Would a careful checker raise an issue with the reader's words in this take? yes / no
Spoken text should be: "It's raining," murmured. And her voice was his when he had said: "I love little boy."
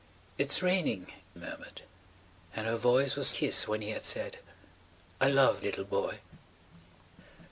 no